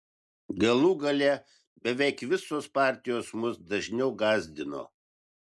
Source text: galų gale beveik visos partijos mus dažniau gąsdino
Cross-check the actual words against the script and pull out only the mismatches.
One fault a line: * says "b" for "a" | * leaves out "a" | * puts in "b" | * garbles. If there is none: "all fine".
all fine